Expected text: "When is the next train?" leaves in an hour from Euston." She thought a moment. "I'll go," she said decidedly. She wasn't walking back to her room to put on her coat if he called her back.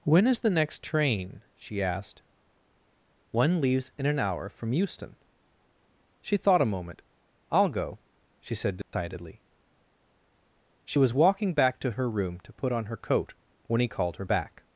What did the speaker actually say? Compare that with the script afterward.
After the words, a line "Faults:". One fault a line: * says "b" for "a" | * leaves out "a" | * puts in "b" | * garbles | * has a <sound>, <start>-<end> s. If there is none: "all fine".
"When is the next train?" she asked. "One leaves in an hour from Euston." She thought a moment. "I'll go," she said decidedly. She was walking back to her room to put on her coat when he called her back.
Faults:
* puts in "she asked One"
* has a dropout, 8.8-8.9 s
* says "was" for "wasn't"
* says "when" for "if"